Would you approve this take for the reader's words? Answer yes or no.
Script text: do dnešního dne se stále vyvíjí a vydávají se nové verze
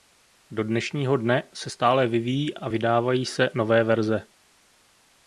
yes